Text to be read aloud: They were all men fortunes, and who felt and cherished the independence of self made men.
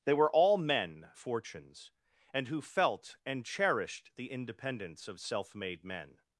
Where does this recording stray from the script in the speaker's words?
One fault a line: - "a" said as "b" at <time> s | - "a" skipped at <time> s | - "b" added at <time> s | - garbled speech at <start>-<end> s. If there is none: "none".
none